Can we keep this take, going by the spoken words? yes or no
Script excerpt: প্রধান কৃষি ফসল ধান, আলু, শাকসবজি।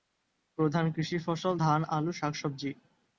yes